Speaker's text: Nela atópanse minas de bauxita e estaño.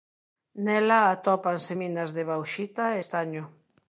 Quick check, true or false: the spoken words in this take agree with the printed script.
true